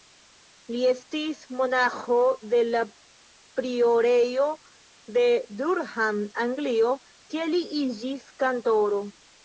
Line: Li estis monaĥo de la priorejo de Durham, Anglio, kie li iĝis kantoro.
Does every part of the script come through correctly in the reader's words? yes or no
yes